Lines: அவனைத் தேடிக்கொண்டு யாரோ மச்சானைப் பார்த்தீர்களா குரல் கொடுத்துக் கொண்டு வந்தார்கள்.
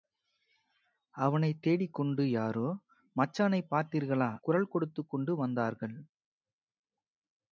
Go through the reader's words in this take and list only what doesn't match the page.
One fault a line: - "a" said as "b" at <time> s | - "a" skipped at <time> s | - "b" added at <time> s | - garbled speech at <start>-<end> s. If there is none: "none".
none